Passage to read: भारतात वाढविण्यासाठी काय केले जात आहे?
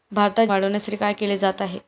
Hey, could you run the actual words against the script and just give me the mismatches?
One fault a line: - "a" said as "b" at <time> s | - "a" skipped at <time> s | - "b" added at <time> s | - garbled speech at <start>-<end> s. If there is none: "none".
none